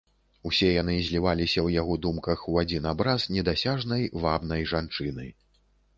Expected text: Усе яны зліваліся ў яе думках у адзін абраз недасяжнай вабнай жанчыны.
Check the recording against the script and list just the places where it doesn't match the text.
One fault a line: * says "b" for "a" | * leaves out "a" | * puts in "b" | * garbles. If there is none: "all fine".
* says "яго" for "яе"